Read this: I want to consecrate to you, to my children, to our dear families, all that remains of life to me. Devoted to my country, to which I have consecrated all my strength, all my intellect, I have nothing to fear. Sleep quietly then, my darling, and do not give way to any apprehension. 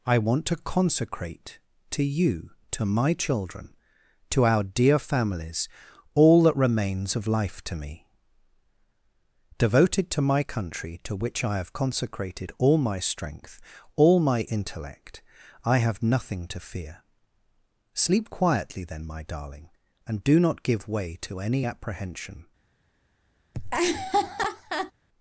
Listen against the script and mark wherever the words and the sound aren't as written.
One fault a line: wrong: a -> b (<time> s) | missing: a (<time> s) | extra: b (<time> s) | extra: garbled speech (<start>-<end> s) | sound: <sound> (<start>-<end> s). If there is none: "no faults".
sound: laugh (23.5-24.9 s)